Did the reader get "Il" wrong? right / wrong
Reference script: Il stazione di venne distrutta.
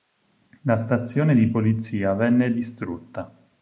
wrong